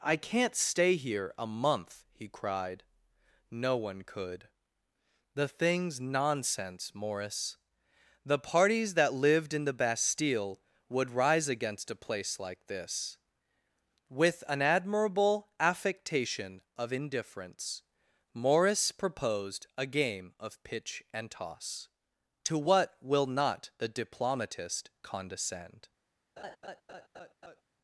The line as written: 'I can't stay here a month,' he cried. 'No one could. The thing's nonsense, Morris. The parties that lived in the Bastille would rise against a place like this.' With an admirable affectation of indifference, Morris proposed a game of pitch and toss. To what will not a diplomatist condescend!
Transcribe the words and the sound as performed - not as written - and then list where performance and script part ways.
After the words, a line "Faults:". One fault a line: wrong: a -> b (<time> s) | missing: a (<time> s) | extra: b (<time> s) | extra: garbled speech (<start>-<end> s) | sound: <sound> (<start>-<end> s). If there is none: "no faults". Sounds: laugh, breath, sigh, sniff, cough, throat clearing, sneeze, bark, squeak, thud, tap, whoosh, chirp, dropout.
'I can't stay here a month,' he cried. 'No one could. The thing's nonsense, Morris. The parties that lived in the Bastille would rise against a place like this.' With an admirable affectation of indifference, Morris proposed a game of pitch and toss. To what will not the diplomatist condescend!
Faults:
wrong: a -> the (23.8 s)
sound: laugh (26.4-27.6 s)